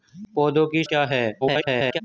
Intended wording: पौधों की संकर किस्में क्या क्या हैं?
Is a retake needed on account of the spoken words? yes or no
yes